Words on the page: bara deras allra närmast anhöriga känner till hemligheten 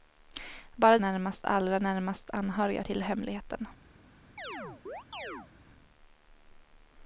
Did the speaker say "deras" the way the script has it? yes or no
no